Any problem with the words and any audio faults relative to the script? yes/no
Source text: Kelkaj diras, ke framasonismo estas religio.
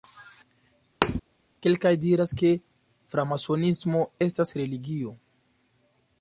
yes